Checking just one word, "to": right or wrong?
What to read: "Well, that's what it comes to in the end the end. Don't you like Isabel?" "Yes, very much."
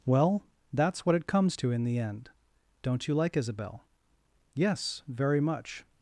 right